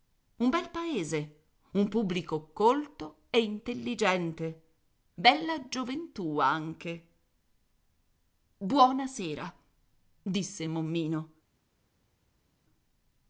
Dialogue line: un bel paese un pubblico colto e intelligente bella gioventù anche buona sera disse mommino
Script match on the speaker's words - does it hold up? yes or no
yes